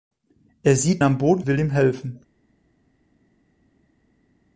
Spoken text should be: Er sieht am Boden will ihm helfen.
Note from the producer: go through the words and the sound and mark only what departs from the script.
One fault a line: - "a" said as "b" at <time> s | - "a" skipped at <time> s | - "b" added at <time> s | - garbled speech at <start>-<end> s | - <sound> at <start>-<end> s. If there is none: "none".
none